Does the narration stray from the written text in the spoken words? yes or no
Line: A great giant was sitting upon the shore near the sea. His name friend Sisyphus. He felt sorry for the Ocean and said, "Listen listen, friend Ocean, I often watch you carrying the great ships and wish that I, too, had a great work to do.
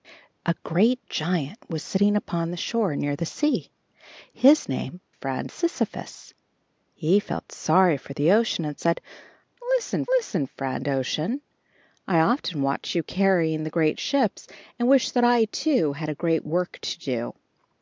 no